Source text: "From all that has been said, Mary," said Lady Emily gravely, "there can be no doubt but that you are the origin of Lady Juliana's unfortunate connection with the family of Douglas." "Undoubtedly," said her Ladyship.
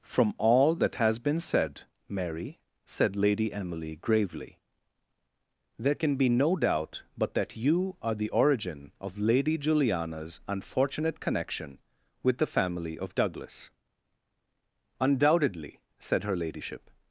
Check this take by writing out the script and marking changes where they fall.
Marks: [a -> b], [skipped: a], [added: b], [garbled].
"From all that has been said, Mary," said Lady Emily gravely, "there can be no doubt but that you are the origin of Lady Juliana's unfortunate connection with the family of Douglas." "Undoubtedly," said her Ladyship.